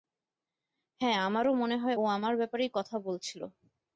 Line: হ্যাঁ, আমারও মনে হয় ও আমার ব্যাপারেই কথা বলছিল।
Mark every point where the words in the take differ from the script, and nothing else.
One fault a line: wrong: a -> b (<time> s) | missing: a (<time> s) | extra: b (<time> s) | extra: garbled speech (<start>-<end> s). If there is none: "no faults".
no faults